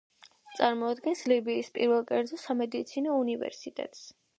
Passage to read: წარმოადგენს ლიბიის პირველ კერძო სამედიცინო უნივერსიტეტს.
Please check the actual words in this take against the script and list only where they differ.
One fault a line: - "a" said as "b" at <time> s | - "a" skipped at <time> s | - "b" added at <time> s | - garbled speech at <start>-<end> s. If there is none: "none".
none